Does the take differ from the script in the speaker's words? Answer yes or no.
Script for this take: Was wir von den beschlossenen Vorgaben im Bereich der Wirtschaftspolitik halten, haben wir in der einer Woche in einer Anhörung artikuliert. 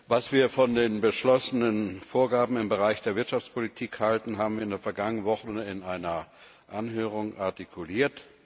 yes